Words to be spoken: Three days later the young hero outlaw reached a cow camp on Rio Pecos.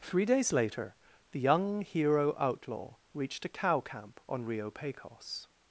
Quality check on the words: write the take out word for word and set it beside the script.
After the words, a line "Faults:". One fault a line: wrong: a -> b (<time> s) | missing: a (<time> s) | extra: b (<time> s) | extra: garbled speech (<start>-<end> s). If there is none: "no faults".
Three days later the young hero outlaw reached a cow camp on Rio Pecos.
Faults:
no faults